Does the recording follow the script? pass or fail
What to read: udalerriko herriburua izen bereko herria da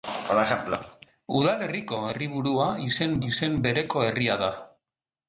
fail